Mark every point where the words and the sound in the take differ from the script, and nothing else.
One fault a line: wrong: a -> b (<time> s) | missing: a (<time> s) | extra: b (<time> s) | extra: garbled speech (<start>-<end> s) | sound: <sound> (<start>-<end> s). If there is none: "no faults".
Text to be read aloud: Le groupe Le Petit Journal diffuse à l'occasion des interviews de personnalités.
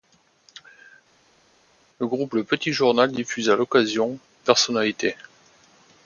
missing: des interviews de (4.2 s)